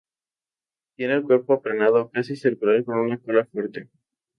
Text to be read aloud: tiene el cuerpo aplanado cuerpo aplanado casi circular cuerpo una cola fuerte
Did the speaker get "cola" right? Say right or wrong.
right